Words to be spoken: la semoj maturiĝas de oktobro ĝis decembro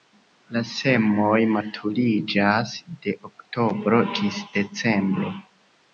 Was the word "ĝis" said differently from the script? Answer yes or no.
no